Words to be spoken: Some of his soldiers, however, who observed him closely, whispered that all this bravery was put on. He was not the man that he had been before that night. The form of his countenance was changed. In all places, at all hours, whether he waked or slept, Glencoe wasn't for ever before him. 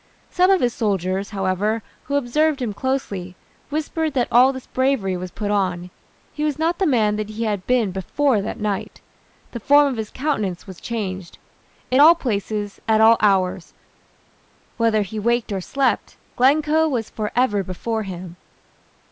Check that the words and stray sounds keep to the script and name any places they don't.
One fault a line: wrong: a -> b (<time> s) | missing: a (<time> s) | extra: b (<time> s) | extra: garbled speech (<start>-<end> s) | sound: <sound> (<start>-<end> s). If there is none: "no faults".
wrong: wasn't -> was (16.9 s)